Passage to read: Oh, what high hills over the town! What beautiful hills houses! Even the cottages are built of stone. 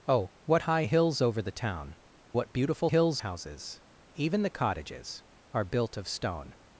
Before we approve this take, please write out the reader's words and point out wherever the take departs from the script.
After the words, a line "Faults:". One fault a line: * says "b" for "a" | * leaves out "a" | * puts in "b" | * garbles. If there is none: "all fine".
Oh, what high hills over the town! What beautiful hills houses! Even the cottages are built of stone.
Faults:
all fine